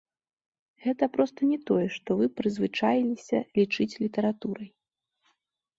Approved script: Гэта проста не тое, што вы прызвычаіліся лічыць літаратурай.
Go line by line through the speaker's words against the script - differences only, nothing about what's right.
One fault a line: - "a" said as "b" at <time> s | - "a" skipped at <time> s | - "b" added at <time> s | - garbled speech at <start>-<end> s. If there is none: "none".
none